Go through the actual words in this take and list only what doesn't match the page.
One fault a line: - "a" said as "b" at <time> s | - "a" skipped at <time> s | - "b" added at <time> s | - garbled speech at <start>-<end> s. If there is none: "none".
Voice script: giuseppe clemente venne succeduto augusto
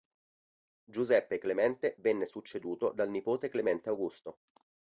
- "dal nipote clemente" added at 2.9 s